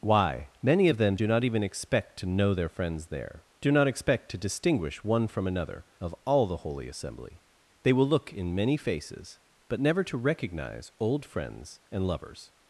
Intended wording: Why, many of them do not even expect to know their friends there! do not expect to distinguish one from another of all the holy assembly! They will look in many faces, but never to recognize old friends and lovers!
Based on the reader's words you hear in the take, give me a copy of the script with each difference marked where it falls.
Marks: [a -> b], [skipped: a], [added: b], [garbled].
Why, many of them do not even expect to know their friends there! do not expect to distinguish one from another of all the holy assembly! They will look in many faces, but never to recognize old friends and lovers!